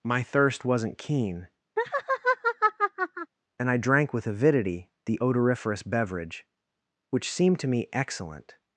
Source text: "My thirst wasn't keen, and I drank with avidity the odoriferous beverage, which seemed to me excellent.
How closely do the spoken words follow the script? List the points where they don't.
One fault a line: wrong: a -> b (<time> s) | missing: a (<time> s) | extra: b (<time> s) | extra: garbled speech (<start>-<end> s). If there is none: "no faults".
no faults